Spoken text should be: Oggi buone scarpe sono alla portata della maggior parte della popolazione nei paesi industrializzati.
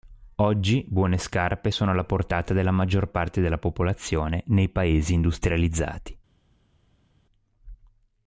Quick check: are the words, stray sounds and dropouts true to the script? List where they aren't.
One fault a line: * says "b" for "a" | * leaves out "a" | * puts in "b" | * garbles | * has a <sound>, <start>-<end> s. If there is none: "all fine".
all fine